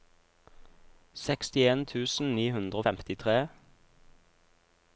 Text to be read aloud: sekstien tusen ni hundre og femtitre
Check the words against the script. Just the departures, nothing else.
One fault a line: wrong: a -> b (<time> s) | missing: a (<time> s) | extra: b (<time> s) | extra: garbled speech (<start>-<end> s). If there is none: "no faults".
no faults